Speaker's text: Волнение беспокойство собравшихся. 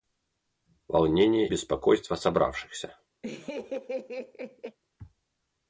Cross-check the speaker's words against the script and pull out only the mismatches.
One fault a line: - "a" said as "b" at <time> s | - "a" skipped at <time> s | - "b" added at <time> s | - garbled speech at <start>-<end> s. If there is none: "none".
none